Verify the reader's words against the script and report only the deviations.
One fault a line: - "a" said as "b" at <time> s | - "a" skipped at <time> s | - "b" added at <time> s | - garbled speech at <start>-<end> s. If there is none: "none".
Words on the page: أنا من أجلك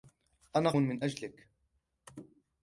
none